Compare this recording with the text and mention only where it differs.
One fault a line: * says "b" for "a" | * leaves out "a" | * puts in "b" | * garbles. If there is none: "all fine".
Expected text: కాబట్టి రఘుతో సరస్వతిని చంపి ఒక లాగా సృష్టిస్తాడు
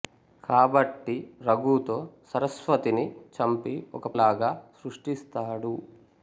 all fine